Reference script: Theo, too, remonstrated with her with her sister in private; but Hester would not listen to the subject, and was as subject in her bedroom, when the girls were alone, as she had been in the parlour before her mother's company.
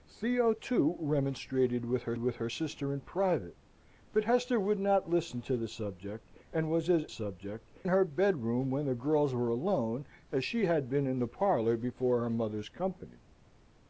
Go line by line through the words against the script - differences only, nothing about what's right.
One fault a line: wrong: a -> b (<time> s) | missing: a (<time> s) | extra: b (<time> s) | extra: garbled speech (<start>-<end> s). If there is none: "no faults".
no faults